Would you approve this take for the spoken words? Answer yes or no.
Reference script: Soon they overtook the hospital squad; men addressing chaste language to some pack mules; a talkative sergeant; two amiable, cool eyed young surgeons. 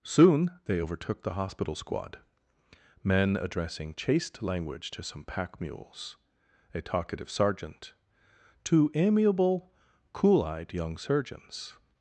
yes